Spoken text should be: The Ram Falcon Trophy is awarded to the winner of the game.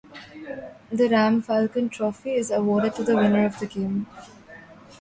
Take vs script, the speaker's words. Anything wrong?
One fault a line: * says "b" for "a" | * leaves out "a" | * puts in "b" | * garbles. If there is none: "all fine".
all fine